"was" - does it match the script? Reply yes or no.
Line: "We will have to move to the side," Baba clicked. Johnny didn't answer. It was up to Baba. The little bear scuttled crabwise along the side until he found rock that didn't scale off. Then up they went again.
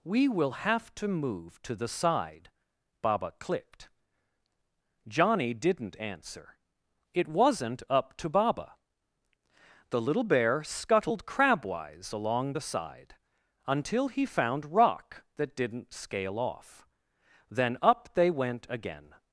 no